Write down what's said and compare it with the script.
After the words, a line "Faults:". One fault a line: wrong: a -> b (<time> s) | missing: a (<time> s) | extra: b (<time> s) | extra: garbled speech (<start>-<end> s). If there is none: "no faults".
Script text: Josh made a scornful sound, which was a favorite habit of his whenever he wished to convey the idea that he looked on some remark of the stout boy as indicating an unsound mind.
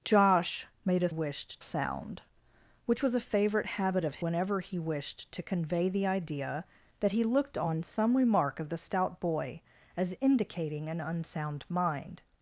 Josh made a wished sound, which was a favorite habit of whenever he wished to convey the idea that he looked on some remark of the stout boy as indicating an unsound mind.
Faults:
wrong: scornful -> wished (1.1 s)
missing: his (4.2 s)